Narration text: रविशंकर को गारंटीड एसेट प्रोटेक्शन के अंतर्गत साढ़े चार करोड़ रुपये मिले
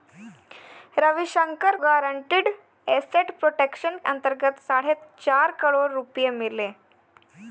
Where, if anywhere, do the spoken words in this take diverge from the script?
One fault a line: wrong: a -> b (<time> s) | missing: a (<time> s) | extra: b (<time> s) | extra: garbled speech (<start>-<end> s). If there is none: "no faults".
missing: को (1.8 s)
missing: के (4.0 s)